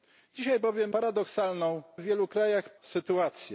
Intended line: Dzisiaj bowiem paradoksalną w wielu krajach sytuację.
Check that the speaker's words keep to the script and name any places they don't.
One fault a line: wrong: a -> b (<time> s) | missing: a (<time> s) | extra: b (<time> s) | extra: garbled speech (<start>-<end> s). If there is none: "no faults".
no faults